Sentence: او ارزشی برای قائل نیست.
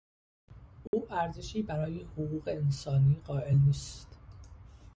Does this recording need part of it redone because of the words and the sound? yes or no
yes